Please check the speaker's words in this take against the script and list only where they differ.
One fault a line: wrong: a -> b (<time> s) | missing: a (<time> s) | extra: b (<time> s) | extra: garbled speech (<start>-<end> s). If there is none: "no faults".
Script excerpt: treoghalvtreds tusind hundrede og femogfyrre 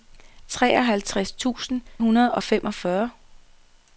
no faults